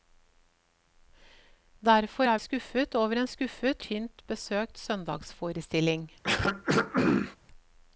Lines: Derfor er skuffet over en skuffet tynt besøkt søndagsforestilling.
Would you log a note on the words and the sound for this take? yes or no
yes